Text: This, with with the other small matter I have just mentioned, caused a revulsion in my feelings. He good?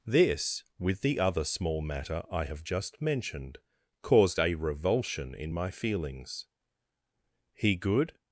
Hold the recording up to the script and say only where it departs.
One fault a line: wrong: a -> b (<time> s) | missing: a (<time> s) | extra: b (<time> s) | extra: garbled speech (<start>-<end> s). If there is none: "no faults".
missing: with (1.0 s)